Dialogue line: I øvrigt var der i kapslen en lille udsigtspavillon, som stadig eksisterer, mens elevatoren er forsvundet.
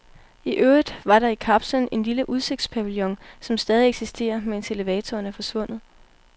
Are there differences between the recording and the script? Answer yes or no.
no